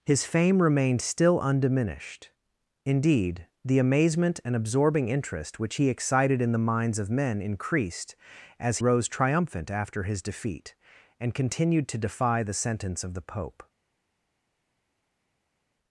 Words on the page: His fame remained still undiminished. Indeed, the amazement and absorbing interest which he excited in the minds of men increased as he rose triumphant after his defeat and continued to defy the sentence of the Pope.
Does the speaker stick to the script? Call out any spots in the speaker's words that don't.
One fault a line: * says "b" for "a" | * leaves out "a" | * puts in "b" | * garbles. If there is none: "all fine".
* leaves out "he"